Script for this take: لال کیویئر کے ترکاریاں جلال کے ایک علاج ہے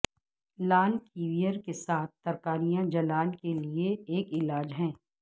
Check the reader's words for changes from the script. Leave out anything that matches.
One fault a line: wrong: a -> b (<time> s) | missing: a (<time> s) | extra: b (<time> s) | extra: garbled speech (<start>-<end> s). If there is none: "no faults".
extra: ساتھ (1.7 s)
extra: لئے (3.6 s)